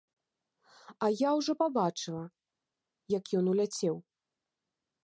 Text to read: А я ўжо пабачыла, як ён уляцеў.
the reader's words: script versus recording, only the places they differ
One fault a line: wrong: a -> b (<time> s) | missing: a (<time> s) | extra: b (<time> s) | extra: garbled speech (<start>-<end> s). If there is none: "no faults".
no faults